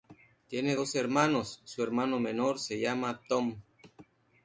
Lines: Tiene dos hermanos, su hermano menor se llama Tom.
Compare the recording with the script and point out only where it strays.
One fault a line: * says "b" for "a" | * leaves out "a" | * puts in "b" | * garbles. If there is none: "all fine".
all fine